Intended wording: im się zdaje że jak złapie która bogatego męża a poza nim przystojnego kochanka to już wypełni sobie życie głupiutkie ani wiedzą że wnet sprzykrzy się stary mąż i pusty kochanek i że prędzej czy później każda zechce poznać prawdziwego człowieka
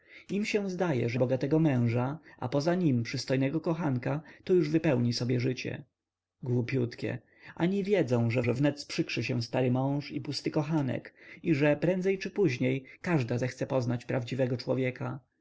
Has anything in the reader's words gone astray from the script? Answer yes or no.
yes